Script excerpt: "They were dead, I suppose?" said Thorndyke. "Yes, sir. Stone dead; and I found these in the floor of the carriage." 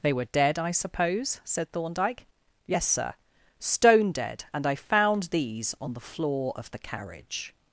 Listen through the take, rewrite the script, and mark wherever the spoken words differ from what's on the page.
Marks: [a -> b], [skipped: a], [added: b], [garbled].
"They were dead, I suppose?" said Thorndyke. "Yes, sir. Stone dead; and I found these [in -> on] the floor of the carriage."